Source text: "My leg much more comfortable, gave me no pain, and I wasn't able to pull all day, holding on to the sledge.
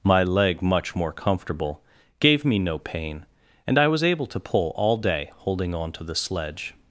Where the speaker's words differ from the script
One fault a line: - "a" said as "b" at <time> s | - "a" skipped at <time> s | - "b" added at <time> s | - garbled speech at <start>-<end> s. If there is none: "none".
- "wasn't" said as "was" at 3.9 s